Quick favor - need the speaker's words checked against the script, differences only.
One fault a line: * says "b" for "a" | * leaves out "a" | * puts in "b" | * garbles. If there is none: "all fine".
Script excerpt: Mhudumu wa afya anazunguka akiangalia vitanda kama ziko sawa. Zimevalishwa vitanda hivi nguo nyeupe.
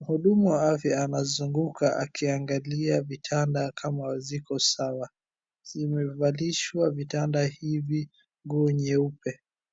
all fine